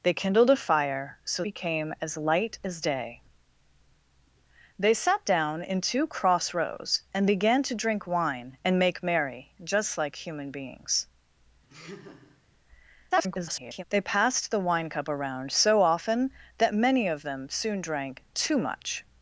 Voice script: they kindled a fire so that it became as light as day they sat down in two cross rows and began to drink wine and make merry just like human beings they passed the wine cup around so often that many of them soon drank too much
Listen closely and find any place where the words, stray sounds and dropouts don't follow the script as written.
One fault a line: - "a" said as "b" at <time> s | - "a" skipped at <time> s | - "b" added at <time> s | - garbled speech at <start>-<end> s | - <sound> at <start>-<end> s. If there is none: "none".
- "that it" skipped at 1.4 s
- laugh at 11.7-12.4 s
- garbled speech at 13.1-13.8 s